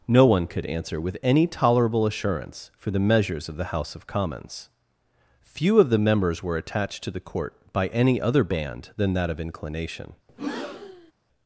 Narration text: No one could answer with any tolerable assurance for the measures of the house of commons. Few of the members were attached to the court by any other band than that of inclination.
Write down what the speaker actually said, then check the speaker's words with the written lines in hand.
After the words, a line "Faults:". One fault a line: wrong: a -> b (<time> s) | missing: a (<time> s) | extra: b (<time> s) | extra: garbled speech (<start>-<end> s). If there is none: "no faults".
No one could answer with any tolerable assurance for the measures of the house of commons. Few of the members were attached to the court by any other band than that of inclination.
Faults:
no faults